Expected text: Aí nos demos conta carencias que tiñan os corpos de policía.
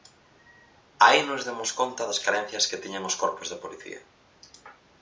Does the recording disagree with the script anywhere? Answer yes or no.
yes